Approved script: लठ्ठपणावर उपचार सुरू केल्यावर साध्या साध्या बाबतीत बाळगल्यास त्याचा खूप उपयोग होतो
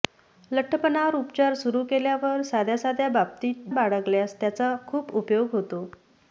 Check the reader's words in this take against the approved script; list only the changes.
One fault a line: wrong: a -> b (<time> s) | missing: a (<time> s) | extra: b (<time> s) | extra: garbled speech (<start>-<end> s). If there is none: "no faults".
no faults